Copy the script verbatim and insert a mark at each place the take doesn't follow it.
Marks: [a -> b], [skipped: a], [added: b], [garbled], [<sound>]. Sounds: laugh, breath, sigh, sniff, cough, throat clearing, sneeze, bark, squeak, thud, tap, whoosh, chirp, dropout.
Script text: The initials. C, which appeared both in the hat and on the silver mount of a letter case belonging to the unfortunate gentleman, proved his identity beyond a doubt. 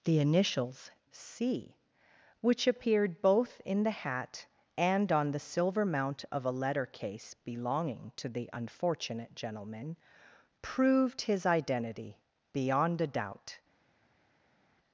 The initials. C, which appeared both in the hat and on the silver mount of a letter case belonging to the unfortunate gentleman, proved his identity beyond a doubt.